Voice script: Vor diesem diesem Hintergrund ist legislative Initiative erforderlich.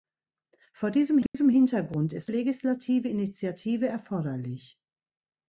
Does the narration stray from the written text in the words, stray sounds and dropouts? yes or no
yes